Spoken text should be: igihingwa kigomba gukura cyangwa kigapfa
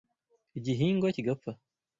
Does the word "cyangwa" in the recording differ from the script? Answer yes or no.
yes